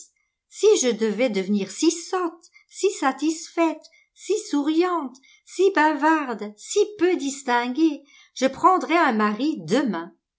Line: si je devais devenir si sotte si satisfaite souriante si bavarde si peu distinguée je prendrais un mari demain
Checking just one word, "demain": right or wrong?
right